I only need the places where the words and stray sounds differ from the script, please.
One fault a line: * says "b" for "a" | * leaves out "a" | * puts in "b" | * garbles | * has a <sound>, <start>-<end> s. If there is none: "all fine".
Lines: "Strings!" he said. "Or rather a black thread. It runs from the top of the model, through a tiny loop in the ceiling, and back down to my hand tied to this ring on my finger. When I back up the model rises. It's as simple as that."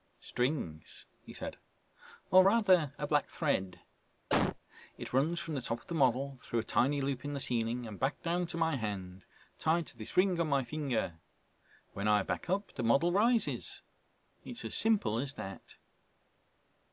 * has a cough, 4.3-4.6 s